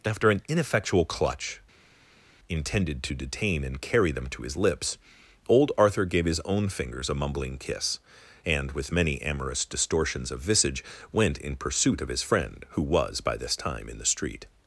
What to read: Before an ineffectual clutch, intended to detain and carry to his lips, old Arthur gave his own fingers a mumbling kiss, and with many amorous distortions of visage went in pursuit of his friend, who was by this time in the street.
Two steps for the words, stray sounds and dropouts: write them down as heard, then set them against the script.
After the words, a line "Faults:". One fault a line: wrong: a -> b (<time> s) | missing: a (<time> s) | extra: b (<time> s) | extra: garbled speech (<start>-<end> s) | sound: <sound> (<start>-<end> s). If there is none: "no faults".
After an ineffectual clutch, intended to detain and carry them to his lips, old Arthur gave his own fingers a mumbling kiss, and with many amorous distortions of visage went in pursuit of his friend, who was by this time in the street.
Faults:
wrong: Before -> After (0.0 s)
extra: them (4.1 s)